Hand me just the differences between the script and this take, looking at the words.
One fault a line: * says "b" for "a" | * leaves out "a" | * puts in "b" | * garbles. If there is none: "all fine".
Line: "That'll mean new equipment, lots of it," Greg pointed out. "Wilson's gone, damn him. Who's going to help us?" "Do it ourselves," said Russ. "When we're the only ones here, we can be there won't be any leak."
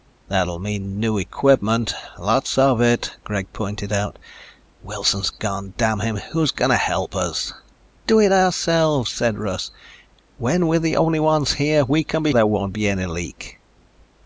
all fine